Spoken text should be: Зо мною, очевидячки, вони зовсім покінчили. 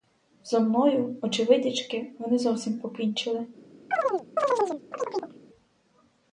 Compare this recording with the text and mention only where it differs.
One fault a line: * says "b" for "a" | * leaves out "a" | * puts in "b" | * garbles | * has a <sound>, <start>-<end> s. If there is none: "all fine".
* has a chirp, 3.9-5.4 s